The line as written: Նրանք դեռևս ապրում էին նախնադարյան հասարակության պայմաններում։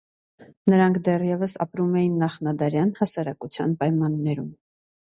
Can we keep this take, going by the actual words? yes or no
yes